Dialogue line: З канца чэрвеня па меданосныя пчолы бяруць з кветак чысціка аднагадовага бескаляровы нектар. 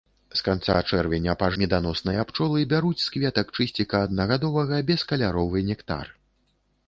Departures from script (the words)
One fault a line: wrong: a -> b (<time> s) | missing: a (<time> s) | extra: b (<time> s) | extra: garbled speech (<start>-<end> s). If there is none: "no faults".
no faults